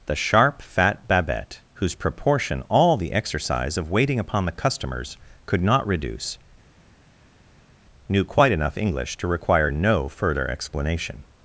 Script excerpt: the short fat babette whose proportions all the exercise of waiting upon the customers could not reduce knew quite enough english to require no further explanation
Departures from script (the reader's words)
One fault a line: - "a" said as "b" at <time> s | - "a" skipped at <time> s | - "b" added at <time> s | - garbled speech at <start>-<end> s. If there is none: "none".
- "short" said as "sharp" at 0.1 s
- "proportions" said as "proportion" at 1.9 s